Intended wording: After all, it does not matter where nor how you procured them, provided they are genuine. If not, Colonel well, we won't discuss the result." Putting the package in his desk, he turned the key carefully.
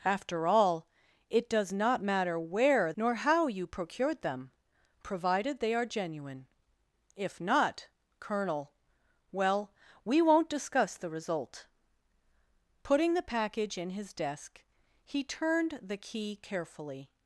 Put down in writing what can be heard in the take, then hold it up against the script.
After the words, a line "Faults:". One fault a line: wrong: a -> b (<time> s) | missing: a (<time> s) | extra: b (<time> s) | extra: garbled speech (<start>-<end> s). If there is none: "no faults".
After all, it does not matter where nor how you procured them, provided they are genuine. If not, Colonel well, we won't discuss the result." Putting the package in his desk, he turned the key carefully.
Faults:
no faults